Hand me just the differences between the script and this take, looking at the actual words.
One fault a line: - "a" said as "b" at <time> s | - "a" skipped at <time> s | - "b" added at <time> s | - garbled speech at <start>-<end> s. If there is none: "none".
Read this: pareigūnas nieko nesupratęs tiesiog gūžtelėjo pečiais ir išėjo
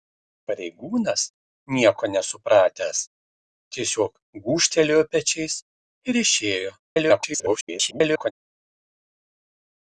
- garbled speech at 6.9-8.3 s